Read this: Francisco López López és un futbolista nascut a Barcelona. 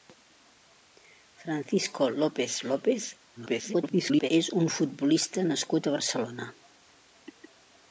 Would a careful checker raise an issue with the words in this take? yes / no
yes